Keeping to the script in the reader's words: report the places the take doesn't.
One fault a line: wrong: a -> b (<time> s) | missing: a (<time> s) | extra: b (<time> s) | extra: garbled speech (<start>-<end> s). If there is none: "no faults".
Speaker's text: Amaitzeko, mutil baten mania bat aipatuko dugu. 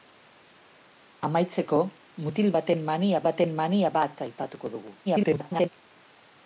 extra: baten mania (3.3 s)
extra: garbled speech (5.1-5.7 s)